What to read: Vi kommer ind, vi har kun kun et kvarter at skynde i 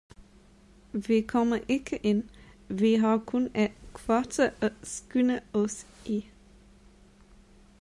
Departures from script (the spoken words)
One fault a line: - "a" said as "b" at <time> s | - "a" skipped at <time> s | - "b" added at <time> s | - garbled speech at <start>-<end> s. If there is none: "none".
- "ikke" added at 1.7 s
- "kun" skipped at 3.5 s
- "os" added at 5.5 s